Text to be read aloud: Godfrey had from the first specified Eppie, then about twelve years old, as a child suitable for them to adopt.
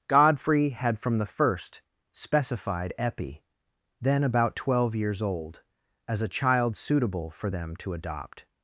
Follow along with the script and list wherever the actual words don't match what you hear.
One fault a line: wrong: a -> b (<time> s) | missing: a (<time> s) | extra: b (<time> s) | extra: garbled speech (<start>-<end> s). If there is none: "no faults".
no faults